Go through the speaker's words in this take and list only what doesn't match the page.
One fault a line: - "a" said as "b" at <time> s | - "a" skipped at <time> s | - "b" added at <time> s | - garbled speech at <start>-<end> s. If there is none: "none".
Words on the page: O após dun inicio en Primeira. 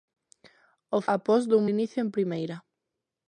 none